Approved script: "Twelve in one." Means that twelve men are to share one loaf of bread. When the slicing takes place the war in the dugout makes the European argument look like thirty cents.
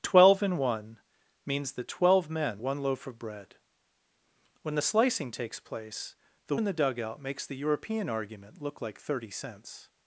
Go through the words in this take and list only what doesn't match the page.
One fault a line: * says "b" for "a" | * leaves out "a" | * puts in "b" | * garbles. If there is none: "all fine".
* leaves out "are to share"
* leaves out "war"